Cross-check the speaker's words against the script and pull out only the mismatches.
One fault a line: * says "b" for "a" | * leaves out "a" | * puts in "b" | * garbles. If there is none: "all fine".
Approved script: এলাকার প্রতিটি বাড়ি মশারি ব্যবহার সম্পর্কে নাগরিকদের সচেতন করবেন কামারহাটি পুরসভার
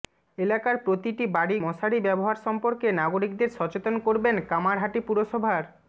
all fine